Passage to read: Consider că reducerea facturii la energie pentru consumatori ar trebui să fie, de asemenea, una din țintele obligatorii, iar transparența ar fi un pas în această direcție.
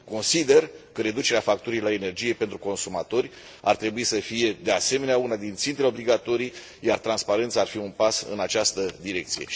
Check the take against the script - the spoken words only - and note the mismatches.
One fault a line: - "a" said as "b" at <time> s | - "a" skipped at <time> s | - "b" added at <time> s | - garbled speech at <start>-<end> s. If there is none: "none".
none